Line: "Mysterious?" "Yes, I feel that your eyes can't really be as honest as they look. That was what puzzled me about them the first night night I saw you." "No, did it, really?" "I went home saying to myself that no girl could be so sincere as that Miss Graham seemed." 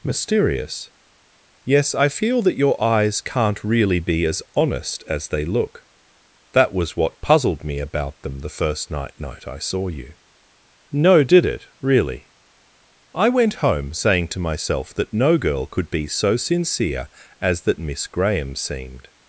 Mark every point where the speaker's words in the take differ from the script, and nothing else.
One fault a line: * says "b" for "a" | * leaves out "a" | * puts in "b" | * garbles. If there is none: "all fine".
all fine